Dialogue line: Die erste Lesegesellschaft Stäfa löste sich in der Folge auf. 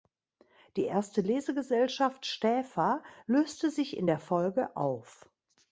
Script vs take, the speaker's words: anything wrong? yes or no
no